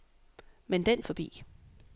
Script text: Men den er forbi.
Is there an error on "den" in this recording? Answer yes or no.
no